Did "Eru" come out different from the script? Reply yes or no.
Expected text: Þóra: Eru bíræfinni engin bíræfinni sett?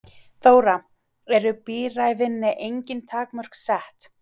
no